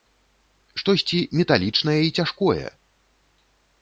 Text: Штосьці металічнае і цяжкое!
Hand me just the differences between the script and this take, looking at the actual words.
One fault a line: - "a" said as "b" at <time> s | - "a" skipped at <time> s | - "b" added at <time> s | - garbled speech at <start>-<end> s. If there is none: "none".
none